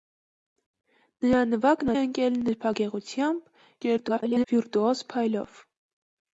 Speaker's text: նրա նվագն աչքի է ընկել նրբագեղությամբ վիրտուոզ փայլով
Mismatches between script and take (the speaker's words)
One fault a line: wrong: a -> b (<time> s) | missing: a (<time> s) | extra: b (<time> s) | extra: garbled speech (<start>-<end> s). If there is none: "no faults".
missing: աչքի (1.9 s)
extra: garbled speech (3.8-4.4 s)